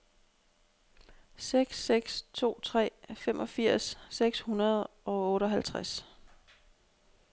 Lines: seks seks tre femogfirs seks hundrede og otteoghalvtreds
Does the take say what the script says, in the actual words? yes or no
no